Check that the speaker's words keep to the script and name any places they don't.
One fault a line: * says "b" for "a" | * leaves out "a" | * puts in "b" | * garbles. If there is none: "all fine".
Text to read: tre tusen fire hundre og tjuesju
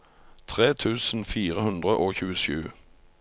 all fine